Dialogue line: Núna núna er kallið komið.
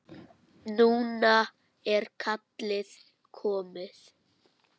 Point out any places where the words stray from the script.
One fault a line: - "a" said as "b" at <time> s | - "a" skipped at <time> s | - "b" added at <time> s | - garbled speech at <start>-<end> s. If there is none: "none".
- "núna" skipped at 1.3 s